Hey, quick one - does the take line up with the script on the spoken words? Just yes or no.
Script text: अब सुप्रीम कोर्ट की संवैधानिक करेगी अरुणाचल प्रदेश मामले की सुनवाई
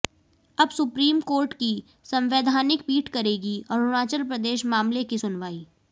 no